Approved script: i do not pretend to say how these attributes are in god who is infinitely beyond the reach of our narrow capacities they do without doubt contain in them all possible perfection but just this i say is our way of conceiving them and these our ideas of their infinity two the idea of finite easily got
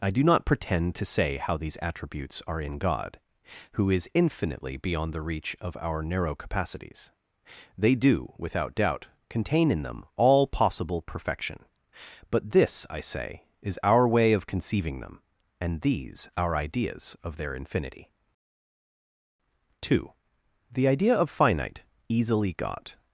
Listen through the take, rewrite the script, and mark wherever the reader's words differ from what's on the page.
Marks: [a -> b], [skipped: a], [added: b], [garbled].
i do not pretend to say how these attributes are in god who is infinitely beyond the reach of our narrow capacities they do without doubt contain in them all possible perfection but [skipped: just] this i say is our way of conceiving them and these our ideas of their infinity two the idea of finite easily got